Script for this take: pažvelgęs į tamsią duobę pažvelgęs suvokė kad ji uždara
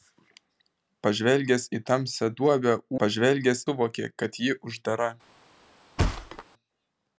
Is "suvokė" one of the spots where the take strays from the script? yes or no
no